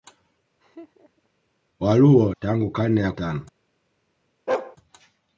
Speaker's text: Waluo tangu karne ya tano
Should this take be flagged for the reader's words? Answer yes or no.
no